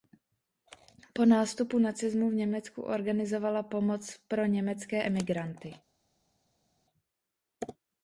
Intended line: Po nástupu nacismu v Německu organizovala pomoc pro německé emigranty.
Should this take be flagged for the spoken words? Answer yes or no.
no